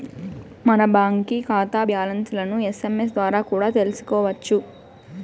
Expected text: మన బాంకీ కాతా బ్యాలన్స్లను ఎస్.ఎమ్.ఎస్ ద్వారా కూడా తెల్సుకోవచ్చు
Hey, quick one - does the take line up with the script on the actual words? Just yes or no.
yes